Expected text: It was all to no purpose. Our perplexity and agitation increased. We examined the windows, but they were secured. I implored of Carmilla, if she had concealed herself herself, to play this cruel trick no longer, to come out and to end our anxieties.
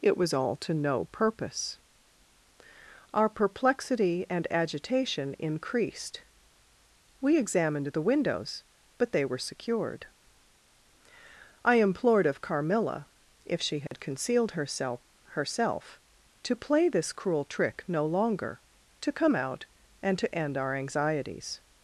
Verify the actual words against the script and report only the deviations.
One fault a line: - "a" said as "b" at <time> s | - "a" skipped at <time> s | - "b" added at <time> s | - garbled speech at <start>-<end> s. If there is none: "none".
none